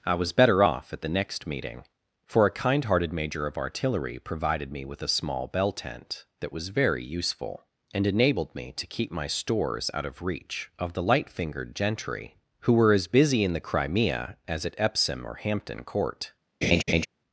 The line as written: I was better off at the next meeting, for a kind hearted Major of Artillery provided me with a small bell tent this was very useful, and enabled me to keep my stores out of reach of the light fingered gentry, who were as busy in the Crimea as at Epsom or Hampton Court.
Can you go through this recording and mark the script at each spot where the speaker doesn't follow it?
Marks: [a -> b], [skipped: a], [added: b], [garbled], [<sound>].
I was better off at the next meeting, for a kind hearted Major of Artillery provided me with a small bell tent [this -> that] was very useful, and enabled me to keep my stores out of reach of the light fingered gentry, who were as busy in the Crimea as at Epsom or Hampton Court. [laugh]